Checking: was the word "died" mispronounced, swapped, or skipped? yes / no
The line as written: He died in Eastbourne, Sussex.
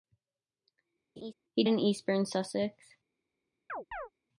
yes